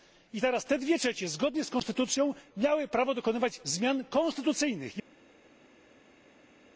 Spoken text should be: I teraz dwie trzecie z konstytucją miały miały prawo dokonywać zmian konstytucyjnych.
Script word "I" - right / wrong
right